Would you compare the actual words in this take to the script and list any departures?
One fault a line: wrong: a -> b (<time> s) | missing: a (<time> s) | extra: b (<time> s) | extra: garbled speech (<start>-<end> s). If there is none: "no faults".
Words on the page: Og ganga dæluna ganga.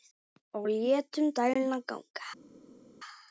wrong: ganga -> létum (0.7 s)